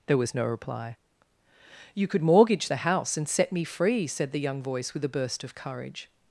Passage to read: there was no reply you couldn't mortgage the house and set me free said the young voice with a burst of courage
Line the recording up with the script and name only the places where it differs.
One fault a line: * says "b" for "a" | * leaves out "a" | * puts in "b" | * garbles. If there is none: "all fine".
* says "could" for "couldn't"